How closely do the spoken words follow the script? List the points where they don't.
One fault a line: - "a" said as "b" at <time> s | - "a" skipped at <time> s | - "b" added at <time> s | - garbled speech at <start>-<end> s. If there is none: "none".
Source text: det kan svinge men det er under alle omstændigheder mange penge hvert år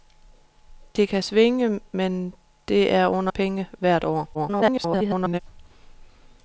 - "alle omstændigheder mange" skipped at 3.3 s
- garbled speech at 4.3-5.4 s